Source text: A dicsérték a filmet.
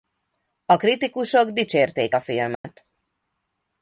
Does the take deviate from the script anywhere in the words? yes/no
yes